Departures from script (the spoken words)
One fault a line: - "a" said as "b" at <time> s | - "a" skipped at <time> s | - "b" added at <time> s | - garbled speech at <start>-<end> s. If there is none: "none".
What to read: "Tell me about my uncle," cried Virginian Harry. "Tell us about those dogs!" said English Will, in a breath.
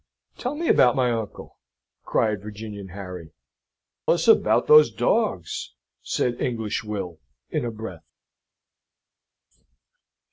- "Tell" skipped at 3.3 s